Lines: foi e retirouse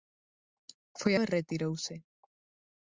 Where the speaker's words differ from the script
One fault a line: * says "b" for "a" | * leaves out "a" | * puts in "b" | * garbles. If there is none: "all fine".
all fine